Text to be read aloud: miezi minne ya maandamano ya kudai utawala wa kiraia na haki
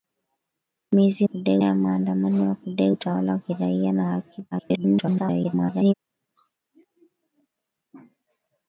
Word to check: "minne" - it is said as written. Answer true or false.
false